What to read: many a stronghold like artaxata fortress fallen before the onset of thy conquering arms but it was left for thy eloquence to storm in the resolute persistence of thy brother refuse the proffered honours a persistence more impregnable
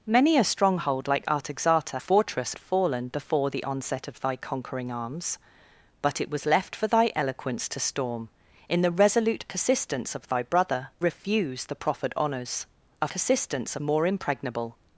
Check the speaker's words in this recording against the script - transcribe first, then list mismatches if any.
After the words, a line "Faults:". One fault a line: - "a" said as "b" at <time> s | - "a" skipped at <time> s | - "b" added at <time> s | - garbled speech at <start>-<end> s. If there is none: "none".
many a stronghold like artaxata fortress fallen before the onset of thy conquering arms but it was left for thy eloquence to storm in the resolute persistence of thy brother refuse the proffered honours a persistence more impregnable
Faults:
none